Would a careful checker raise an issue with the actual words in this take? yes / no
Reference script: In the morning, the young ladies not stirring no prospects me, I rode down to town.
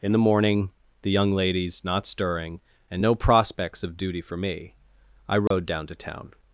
yes